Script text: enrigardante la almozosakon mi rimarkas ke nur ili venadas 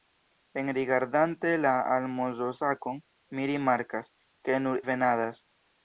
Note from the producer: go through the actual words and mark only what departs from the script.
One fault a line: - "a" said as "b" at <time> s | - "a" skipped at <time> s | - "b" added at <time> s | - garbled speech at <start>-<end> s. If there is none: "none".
- "ili" skipped at 4.8 s